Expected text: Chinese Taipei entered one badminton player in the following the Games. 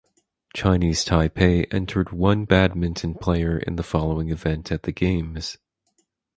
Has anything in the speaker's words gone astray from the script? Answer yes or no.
yes